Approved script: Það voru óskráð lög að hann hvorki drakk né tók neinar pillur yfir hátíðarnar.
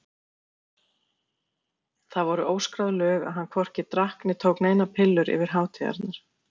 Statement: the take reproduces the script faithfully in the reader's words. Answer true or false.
true